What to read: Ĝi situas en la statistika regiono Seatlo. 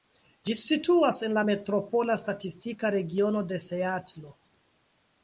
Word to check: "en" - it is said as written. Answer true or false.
true